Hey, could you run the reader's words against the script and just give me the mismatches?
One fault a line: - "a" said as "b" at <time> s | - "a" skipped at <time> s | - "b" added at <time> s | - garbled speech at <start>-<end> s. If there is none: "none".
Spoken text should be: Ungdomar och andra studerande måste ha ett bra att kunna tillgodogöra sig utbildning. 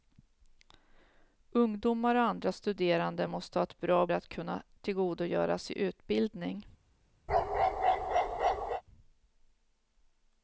none